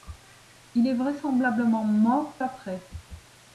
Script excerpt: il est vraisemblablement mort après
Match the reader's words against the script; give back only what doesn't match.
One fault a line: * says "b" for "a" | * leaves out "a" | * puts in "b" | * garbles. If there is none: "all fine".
all fine